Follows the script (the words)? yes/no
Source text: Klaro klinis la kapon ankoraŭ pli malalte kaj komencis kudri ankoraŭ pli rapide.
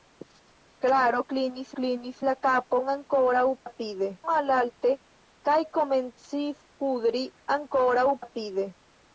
no